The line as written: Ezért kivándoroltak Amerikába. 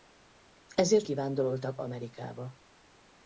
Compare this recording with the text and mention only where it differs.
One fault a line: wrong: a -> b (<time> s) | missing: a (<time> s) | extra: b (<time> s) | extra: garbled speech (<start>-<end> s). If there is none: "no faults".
no faults